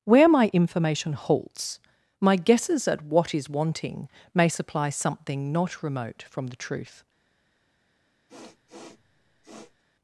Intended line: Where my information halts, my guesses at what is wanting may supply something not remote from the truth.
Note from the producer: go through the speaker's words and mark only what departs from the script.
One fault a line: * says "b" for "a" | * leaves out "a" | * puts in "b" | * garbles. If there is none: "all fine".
all fine